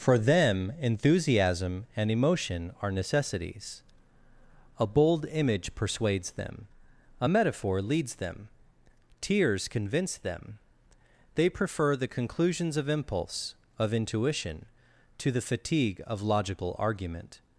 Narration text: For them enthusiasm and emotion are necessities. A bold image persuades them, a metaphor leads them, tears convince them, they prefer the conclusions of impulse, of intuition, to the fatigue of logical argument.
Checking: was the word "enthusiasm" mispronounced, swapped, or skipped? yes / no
no